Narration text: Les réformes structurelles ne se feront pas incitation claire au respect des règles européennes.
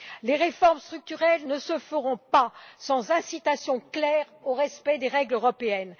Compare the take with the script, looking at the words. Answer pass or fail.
fail